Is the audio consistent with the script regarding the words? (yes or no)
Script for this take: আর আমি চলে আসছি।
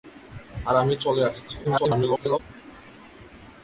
no